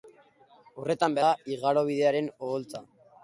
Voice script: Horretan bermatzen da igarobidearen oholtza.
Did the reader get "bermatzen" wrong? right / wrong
wrong